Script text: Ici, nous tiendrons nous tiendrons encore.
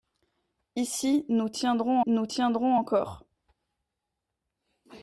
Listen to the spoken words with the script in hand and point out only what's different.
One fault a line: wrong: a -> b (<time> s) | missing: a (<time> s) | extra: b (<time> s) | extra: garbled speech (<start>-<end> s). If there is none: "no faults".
no faults